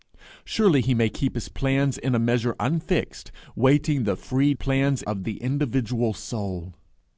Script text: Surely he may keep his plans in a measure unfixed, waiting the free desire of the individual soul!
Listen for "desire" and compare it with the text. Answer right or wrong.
wrong